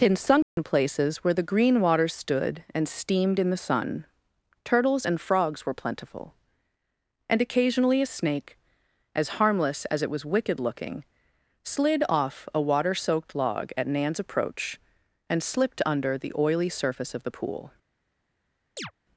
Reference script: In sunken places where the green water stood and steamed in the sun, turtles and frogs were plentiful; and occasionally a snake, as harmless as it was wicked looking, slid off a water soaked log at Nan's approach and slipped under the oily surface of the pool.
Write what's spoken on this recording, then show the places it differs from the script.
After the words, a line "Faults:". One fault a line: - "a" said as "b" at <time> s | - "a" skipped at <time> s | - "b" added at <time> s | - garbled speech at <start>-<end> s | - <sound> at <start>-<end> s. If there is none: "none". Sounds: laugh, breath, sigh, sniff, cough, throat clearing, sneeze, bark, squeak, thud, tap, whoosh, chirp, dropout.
In sunken places where the green water stood and steamed in the sun, turtles and frogs were plentiful; and occasionally a snake, as harmless as it was wicked looking, slid off a water soaked log at Nan's approach and slipped under the oily surface of the pool.
Faults:
- dropout at 0.4-0.6 s
- chirp at 18.8-18.9 s